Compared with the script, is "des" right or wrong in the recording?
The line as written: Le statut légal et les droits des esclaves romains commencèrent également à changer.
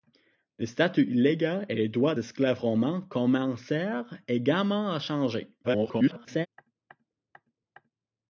wrong